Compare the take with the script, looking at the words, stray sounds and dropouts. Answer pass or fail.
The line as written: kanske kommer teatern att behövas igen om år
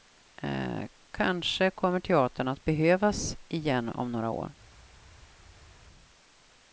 fail